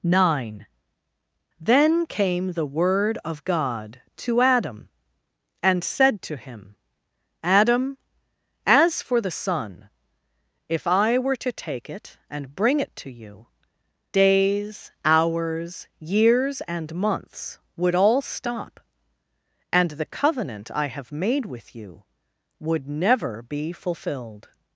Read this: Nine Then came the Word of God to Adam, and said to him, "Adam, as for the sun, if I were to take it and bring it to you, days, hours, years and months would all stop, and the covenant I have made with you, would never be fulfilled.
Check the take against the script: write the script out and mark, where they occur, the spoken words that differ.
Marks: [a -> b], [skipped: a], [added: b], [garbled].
Nine Then came the Word of God to Adam, and said to him, "Adam, as for the sun, if I were to take it and bring it to you, days, hours, years and months would all stop, and the covenant I have made with you, would never be fulfilled.